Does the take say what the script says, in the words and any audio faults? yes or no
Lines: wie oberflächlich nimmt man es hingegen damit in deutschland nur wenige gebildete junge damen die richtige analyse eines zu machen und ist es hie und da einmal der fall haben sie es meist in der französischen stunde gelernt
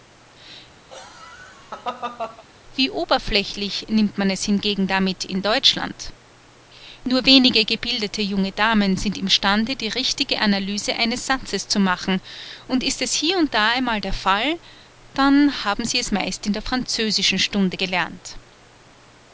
no